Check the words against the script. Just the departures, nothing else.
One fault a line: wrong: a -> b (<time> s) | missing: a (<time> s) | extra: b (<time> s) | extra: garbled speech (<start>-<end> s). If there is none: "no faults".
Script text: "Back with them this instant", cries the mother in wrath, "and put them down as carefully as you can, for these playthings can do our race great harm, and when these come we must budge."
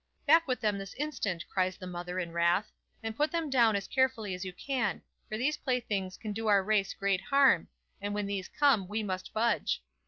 no faults